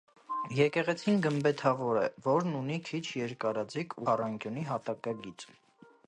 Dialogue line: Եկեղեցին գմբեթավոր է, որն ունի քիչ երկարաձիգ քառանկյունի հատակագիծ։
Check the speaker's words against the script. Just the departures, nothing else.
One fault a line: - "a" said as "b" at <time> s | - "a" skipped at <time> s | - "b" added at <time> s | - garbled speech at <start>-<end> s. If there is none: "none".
none